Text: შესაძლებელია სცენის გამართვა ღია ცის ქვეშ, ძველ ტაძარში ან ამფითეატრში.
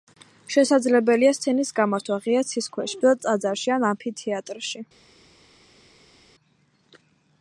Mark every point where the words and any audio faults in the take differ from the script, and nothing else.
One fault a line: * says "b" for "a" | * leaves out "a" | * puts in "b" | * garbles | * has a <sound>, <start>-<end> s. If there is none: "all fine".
all fine